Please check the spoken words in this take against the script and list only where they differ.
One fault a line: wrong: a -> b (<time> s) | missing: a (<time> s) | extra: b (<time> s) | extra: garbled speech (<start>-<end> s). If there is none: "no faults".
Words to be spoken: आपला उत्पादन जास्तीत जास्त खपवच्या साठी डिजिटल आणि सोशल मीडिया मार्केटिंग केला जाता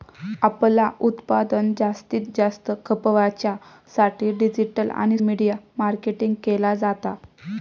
missing: सोशल (5.2 s)